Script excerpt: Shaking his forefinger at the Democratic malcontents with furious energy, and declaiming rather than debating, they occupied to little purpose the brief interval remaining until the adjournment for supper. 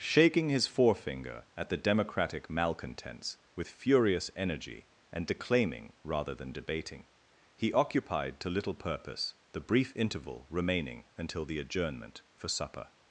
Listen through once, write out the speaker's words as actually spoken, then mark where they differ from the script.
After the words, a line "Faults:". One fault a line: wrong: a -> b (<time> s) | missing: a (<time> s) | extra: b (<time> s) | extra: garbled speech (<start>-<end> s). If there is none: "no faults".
Shaking his forefinger at the Democratic malcontents with furious energy, and declaiming rather than debating, he occupied to little purpose the brief interval remaining until the adjournment for supper.
Faults:
wrong: they -> he (7.5 s)